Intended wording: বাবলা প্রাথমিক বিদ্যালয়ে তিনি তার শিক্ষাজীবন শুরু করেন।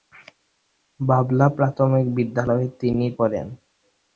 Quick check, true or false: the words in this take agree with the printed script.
false